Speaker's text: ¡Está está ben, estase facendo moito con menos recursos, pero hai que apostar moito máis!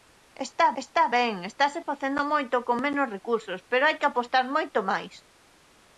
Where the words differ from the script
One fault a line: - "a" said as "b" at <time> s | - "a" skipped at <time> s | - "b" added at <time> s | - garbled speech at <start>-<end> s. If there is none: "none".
none